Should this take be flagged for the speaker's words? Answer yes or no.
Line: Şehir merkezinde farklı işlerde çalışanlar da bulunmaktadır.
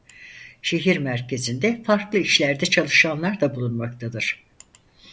no